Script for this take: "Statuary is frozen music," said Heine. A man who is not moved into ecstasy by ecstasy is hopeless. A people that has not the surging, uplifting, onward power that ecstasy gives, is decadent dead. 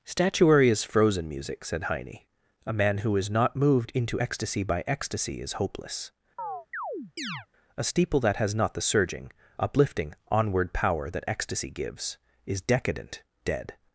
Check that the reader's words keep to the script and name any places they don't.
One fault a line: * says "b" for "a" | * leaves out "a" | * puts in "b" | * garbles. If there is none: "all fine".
* says "steeple" for "people"